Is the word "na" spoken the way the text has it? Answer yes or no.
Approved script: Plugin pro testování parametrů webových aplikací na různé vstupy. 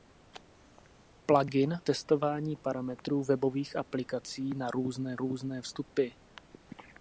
yes